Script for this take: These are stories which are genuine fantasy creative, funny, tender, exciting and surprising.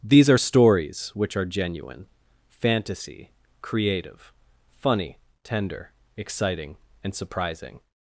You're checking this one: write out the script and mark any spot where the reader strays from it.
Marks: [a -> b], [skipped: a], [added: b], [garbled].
These are stories which are genuine fantasy creative, funny, tender, exciting and surprising.